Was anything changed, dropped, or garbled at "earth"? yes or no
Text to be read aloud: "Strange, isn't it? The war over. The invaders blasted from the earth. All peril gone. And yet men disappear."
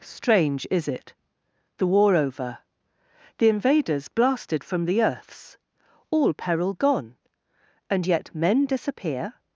yes